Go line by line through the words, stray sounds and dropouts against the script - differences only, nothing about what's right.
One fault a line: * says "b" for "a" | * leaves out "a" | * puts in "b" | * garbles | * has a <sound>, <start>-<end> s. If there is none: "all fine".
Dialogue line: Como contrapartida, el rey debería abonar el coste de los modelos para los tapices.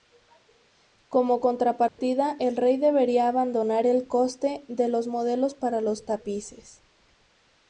* has a dropout, 1.9-2.0 s